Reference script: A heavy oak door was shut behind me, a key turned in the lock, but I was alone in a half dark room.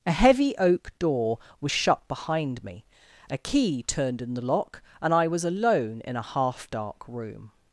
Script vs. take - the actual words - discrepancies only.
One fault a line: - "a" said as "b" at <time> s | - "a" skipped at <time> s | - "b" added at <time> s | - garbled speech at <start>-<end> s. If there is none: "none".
- "but" said as "and" at 5.0 s